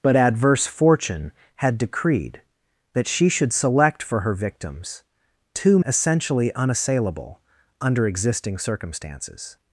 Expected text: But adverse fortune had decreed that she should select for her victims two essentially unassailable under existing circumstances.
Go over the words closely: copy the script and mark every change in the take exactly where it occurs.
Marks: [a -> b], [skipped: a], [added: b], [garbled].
But adverse fortune had decreed that she should select for her victims two essentially unassailable under existing circumstances.